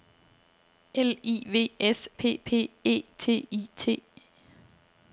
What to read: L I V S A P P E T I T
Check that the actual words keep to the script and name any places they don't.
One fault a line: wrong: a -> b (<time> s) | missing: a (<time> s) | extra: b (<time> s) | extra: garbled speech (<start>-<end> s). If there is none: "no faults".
missing: A (2.1 s)